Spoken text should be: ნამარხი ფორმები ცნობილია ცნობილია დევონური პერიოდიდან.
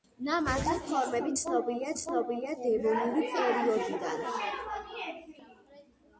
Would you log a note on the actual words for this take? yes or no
no